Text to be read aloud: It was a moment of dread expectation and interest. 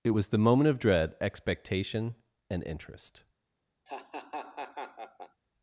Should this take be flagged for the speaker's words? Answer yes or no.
yes